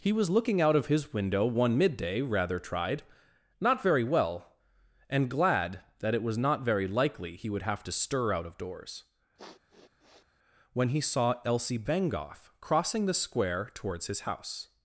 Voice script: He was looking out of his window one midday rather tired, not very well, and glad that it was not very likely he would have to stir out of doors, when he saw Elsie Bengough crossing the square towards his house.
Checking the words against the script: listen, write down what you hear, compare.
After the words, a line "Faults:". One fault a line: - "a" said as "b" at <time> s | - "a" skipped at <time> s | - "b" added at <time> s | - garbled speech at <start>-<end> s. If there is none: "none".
He was looking out of his window one midday rather tried, not very well, and glad that it was not very likely he would have to stir out of doors, when he saw Elsie Bengough crossing the square towards his house.
Faults:
- "tired" said as "tried" at 2.6 s